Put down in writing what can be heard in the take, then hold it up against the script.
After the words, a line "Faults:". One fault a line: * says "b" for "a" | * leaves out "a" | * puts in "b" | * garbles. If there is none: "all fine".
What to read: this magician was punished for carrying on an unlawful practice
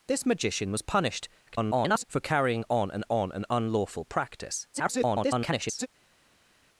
this magician was punished [garbled] for carrying on an on an unlawful practice [garbled]
Faults:
* garbles
* puts in "on an"
* garbles